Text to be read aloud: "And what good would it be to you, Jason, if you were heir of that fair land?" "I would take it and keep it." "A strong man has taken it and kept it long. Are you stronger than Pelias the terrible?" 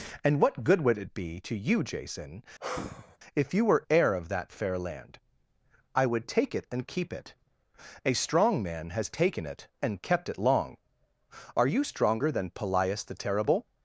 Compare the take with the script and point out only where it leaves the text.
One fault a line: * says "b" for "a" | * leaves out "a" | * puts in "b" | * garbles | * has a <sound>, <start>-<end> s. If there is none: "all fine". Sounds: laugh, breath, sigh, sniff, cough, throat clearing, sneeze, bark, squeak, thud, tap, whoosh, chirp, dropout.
* has a sigh, 2.6-3.2 s